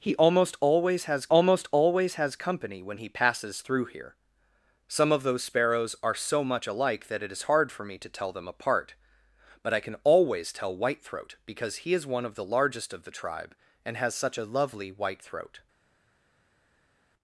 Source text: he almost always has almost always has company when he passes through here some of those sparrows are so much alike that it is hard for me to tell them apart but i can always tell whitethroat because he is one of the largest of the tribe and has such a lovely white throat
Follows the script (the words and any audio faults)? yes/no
yes